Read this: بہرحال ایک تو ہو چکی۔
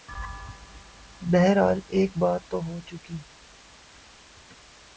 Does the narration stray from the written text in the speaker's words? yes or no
yes